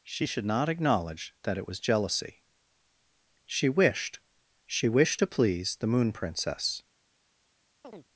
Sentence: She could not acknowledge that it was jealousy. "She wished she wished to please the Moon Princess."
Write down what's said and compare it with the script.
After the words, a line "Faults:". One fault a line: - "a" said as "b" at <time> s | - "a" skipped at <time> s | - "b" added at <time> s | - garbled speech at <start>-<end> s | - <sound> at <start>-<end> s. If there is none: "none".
She should not acknowledge that it was jealousy. "She wished she wished to please the Moon Princess."
Faults:
- "could" said as "should" at 0.2 s
- chirp at 7.8-8.1 s